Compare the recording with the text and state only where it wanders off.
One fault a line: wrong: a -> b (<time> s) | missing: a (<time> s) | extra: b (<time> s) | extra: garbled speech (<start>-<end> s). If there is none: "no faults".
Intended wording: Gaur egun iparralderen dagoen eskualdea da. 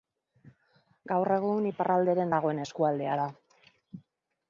no faults